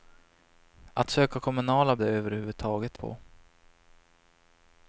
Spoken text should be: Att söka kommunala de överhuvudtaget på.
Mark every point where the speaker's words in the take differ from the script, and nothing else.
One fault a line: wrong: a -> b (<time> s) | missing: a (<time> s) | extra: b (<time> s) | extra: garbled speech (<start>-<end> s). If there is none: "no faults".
no faults